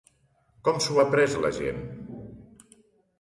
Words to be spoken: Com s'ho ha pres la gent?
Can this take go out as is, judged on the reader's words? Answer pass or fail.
pass